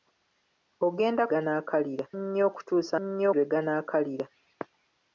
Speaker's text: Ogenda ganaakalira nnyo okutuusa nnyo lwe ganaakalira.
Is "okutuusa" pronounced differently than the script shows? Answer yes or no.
no